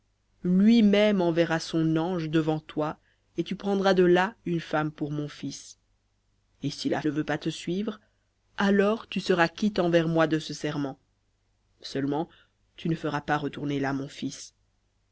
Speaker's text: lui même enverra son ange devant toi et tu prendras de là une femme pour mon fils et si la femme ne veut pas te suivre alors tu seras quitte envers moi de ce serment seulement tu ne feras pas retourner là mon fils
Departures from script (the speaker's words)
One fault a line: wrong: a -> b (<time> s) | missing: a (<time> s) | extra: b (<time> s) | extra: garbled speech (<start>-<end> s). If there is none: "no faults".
missing: femme (7.0 s)